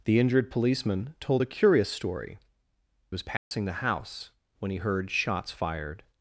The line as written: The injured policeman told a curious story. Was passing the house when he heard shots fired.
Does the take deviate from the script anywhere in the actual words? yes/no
no